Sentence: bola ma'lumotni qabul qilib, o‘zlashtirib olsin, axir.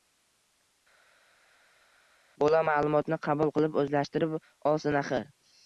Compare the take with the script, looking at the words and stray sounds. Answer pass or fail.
pass